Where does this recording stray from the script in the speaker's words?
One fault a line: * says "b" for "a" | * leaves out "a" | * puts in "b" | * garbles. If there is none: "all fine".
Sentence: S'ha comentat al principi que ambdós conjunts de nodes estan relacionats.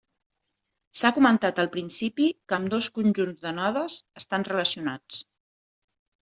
all fine